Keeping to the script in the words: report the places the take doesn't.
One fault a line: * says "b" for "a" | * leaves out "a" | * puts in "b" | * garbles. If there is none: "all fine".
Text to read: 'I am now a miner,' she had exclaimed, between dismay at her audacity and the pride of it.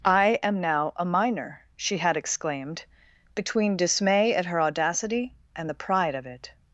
all fine